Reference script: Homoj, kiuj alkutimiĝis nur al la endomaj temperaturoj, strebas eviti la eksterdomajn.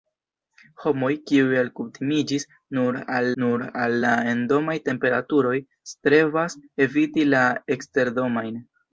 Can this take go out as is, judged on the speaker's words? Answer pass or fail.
fail